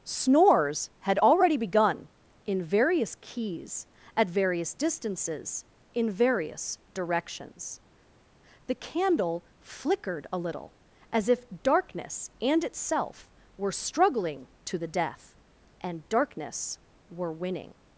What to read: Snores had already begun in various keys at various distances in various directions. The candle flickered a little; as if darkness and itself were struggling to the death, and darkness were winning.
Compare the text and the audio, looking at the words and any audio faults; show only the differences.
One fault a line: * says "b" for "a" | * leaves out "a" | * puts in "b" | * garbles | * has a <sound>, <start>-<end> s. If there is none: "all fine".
all fine